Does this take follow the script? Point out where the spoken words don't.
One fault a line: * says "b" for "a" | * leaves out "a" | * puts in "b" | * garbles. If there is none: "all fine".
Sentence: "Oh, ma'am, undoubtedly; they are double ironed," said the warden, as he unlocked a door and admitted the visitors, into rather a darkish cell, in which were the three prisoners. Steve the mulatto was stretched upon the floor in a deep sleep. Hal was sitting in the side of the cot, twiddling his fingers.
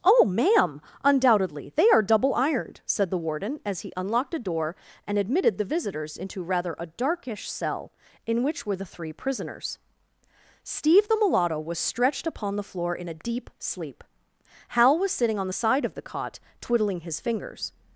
* says "on" for "in"